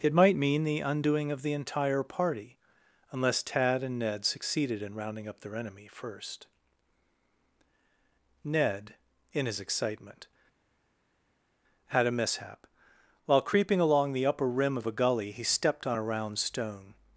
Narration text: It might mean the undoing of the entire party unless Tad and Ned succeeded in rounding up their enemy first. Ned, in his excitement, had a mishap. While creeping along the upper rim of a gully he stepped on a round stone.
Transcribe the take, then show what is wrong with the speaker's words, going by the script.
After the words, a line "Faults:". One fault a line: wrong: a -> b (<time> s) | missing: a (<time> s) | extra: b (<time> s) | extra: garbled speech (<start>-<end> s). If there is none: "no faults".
It might mean the undoing of the entire party unless Tad and Ned succeeded in rounding up their enemy first. Ned, in his excitement, had a mishap. While creeping along the upper rim of a gully he stepped on a round stone.
Faults:
no faults